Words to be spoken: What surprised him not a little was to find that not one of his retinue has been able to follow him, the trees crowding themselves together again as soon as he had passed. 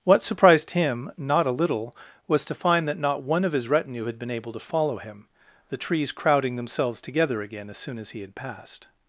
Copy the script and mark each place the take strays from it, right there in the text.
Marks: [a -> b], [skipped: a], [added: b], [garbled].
What surprised him not a little was to find that not one of his retinue [has -> had] been able to follow him, the trees crowding themselves together again as soon as he had passed.